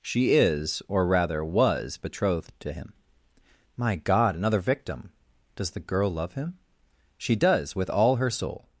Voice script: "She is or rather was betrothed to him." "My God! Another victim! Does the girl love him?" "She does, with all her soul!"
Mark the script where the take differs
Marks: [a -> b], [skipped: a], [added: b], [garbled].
"She is or rather was betrothed to him." "My God! Another victim! Does the girl love him?" "She does, with all her soul!"